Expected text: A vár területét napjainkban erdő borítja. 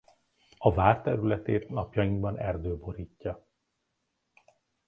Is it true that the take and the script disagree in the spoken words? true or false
false